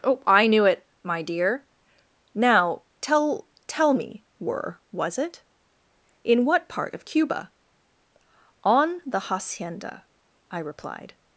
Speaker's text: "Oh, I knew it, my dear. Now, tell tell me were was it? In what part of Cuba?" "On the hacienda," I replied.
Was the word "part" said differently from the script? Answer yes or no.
no